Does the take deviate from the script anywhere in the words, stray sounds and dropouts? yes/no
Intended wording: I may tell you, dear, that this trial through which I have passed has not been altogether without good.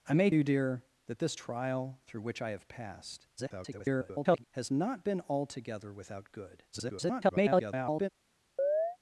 yes